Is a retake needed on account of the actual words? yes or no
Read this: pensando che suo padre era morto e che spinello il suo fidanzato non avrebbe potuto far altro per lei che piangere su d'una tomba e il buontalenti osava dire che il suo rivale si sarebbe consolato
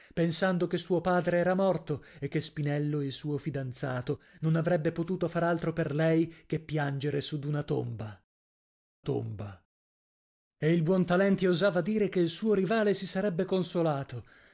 yes